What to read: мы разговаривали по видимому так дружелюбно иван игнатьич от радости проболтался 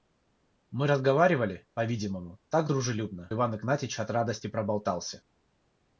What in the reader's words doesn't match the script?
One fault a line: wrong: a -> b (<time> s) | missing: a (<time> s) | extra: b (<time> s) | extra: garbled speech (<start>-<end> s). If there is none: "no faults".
no faults